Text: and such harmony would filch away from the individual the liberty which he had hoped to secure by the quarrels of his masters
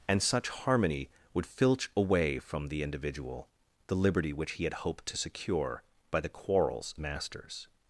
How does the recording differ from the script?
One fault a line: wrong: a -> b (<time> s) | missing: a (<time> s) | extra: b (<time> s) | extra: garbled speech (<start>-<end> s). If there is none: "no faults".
missing: of his (6.9 s)